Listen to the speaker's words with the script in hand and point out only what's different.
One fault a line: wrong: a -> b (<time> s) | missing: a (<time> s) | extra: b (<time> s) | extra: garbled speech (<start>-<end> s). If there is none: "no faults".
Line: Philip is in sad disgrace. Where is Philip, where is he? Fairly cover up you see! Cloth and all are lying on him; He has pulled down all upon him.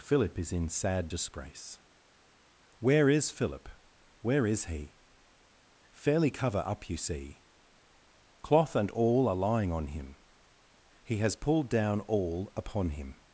no faults